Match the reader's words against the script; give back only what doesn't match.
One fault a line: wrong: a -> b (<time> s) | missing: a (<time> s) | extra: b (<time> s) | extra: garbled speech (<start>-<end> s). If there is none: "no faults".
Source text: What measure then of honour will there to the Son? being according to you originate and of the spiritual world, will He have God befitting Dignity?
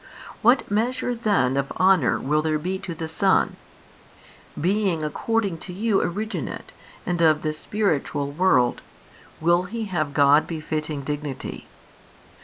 extra: be (2.6 s)